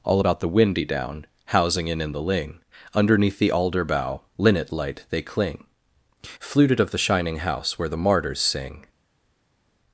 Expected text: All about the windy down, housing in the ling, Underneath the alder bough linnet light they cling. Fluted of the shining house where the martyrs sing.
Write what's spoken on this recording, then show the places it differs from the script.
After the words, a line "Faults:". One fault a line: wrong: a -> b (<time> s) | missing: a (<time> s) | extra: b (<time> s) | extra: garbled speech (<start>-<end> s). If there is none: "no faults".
All about the windy down, housing in in the ling, Underneath the alder bough linnet light they cling. Fluted of the shining house where the martyrs sing.
Faults:
extra: in (2.0 s)